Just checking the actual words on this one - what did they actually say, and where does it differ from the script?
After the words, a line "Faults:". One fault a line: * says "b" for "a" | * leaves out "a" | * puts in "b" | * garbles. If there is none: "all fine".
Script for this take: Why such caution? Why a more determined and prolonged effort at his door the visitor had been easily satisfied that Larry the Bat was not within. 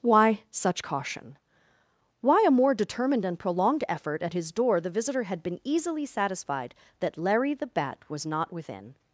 Why such caution? Why a more determined and prolonged effort at his door the visitor had been easily satisfied that Larry the Bat was not within.
Faults:
all fine